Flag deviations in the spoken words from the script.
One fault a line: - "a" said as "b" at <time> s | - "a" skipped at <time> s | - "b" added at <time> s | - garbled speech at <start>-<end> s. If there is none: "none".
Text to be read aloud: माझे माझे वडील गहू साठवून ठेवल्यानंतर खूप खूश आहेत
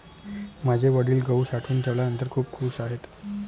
- "माझे" skipped at 0.9 s